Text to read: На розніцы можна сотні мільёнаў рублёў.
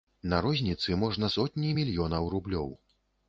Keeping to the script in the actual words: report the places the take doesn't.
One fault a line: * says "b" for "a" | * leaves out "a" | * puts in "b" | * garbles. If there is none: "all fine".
all fine